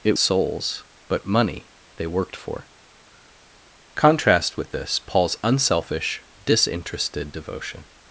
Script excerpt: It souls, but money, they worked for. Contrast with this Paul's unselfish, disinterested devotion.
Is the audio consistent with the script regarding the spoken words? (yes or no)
yes